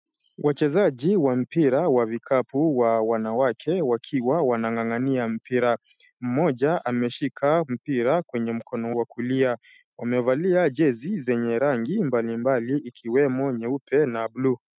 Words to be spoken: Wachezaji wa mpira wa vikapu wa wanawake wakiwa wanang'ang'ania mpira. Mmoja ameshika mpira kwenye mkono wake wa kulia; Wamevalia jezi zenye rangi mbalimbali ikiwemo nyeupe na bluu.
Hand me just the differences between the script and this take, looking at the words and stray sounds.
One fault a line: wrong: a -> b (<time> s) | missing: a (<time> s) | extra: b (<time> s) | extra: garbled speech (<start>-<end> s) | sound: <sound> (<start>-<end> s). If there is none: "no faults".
missing: wake (8.9 s)